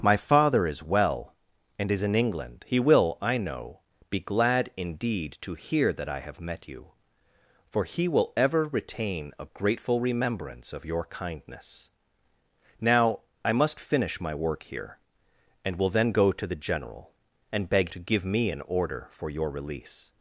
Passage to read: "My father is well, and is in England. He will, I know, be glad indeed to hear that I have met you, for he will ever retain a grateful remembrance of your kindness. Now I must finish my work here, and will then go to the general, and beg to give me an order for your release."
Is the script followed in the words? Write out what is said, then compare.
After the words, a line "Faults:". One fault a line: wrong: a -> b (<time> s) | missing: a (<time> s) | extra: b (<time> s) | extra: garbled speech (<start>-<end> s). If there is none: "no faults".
"My father is well, and is in England. He will, I know, be glad indeed to hear that I have met you, for he will ever retain a grateful remembrance of your kindness. Now I must finish my work here, and will then go to the general, and beg to give me an order for your release."
Faults:
no faults